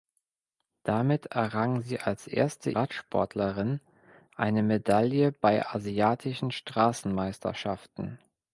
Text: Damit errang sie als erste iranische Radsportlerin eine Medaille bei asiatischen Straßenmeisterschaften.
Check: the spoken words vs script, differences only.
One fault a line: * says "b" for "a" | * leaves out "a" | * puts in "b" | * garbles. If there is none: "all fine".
* leaves out "iranische"